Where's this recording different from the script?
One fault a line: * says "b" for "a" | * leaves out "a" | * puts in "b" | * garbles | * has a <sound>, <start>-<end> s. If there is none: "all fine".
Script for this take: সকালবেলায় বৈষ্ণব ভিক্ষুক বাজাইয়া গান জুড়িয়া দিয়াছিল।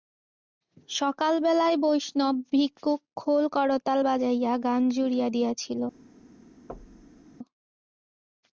* puts in "খোল করতাল"
* has a thud, 6.7-7.3 s